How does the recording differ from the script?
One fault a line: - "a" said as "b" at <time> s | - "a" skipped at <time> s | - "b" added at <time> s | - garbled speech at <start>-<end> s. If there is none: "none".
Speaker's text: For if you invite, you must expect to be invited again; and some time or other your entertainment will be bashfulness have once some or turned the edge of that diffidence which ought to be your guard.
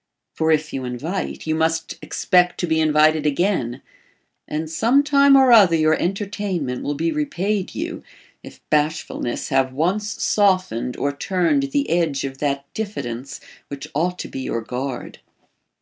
- "repaid you if" added at 7.1 s
- "some" said as "softened" at 10.2 s